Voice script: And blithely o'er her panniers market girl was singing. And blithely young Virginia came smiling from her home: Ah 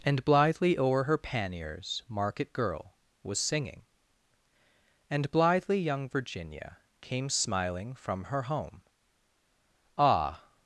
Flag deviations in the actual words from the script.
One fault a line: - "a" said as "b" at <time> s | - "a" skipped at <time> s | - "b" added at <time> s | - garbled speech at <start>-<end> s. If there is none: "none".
none